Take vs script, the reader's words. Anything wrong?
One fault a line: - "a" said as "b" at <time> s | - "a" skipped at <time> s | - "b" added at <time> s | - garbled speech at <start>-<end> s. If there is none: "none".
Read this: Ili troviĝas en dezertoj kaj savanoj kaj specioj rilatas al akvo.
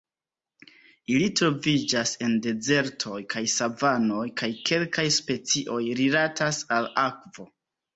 - "kelkaj" added at 4.7 s